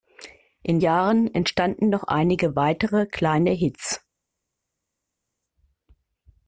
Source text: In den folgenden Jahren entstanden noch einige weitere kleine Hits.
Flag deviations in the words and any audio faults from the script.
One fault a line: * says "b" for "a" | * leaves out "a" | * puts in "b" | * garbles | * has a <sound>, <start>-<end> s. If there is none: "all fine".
* leaves out "den folgenden"